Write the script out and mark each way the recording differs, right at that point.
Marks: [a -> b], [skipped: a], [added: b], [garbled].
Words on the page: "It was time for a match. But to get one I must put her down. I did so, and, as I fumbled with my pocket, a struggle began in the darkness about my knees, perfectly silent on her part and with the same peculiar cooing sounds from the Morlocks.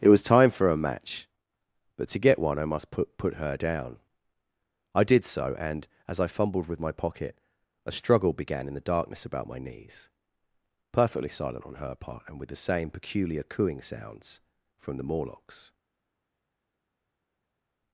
"It was time for a match. But to get one I must put [added: put] her down. I did so, and, as I fumbled with my pocket, a struggle began in the darkness about my knees, perfectly silent on her part and with the same peculiar cooing sounds from the Morlocks.